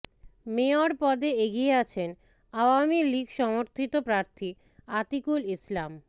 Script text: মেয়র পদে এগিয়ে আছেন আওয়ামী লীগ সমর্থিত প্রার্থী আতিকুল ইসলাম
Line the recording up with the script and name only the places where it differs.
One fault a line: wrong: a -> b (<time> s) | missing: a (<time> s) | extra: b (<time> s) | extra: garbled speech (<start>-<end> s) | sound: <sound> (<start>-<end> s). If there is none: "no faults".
no faults